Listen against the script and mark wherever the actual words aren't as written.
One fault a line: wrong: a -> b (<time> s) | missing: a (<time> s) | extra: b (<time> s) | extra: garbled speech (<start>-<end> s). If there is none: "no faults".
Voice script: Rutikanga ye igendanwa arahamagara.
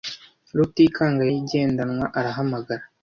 no faults